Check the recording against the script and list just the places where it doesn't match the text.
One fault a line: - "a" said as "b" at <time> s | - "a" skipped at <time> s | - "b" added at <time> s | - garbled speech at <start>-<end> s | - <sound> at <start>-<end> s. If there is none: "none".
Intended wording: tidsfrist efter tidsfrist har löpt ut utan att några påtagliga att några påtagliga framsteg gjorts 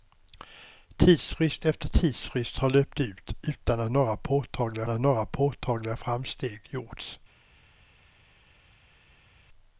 none